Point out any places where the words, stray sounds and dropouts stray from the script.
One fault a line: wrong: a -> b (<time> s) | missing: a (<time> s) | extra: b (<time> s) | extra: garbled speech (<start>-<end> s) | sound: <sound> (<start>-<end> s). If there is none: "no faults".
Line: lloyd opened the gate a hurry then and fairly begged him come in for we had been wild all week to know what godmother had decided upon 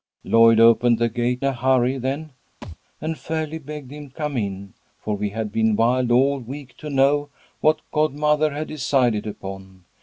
sound: thud (2.6-2.8 s)